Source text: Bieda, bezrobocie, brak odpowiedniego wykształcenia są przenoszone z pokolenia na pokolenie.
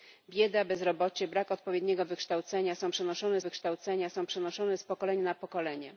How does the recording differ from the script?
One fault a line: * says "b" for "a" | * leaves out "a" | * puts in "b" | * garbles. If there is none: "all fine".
* puts in "wykształcenia są przenoszone"